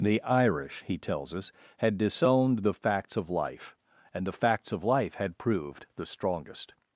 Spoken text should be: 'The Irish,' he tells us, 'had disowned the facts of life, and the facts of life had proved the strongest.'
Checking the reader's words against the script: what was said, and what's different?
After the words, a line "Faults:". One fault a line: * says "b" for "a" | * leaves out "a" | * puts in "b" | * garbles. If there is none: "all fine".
'The Irish,' he tells us, 'had disowned the facts of life, and the facts of life had proved the strongest.'
Faults:
all fine